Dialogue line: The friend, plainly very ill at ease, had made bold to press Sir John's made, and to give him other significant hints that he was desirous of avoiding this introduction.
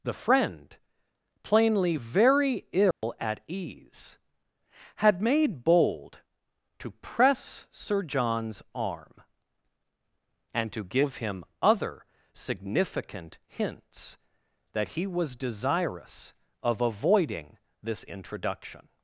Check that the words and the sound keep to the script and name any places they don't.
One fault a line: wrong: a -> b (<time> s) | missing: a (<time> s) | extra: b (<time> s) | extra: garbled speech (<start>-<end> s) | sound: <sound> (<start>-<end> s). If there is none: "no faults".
sound: dropout (2.9-3.0 s)
wrong: made -> arm (8.7 s)